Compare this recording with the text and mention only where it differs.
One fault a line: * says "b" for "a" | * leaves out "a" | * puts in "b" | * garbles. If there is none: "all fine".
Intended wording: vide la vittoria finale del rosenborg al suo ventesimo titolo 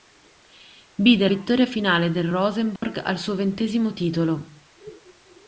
* leaves out "la"